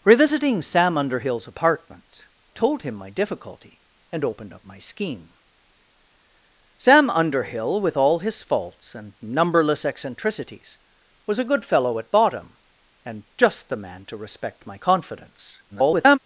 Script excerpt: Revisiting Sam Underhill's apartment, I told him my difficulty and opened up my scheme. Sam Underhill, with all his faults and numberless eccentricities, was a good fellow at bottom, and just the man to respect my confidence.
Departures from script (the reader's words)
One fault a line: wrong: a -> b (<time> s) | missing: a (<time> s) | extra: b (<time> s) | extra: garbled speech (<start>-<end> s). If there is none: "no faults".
missing: I (2.2 s)
extra: garbled speech (15.7-16.2 s)